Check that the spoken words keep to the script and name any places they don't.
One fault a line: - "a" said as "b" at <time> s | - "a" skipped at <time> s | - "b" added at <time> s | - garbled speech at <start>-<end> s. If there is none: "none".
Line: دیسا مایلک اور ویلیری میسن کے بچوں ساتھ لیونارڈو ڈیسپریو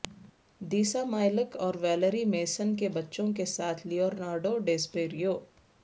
- "کے" added at 3.3 s